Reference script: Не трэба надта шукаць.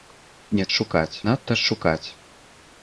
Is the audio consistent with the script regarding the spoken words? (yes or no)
no